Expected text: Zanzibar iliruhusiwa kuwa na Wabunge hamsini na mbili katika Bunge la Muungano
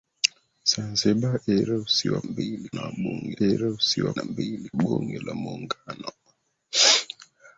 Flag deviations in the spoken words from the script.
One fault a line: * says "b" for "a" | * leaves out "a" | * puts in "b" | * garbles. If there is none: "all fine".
* says "mbili" for "kuwa"
* says "iliruhusiwa" for "hamsini"
* leaves out "katika"